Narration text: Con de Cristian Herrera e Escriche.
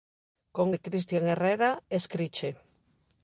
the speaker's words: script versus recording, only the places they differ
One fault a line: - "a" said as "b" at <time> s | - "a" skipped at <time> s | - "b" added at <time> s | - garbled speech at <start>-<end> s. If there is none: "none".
none